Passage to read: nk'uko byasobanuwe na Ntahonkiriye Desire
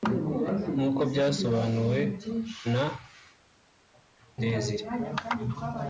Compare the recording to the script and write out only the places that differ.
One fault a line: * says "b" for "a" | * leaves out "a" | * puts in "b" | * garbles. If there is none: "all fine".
* leaves out "Ntahonkiriye"